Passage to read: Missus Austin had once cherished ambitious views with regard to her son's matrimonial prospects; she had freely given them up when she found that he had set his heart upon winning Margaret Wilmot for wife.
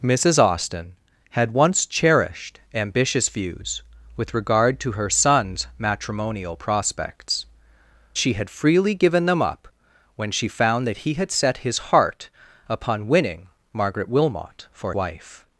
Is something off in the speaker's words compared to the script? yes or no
no